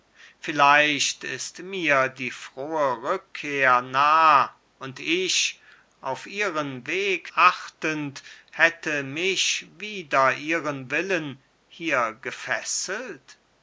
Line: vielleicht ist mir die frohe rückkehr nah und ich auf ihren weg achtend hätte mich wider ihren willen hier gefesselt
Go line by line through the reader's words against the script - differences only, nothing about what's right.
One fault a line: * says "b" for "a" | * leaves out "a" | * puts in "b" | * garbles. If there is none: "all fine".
all fine